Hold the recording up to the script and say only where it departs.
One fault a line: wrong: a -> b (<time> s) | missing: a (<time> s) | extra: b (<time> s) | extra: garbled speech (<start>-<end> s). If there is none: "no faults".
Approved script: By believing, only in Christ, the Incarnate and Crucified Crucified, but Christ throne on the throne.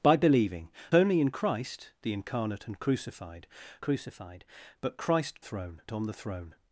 no faults